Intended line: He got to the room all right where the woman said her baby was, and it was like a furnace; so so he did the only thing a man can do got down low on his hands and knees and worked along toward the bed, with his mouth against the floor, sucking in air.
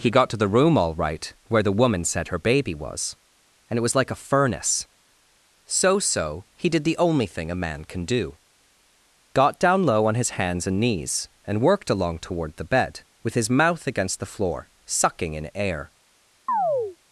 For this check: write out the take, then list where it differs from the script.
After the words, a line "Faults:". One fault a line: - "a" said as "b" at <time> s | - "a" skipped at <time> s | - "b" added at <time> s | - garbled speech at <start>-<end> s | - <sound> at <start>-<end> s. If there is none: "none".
He got to the room all right where the woman said her baby was, and it was like a furnace; so so he did the only thing a man can do got down low on his hands and knees and worked along toward the bed, with his mouth against the floor, sucking in air.
Faults:
- chirp at 16.5-17.0 s